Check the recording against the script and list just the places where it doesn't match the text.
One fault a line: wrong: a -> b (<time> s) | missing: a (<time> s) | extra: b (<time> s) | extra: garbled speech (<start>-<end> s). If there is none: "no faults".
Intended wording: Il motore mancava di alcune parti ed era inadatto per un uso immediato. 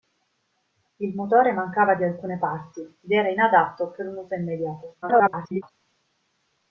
extra: garbled speech (5.0-5.7 s)